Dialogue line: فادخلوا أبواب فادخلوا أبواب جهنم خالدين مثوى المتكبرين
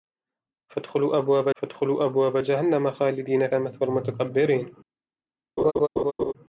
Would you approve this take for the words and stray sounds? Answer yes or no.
no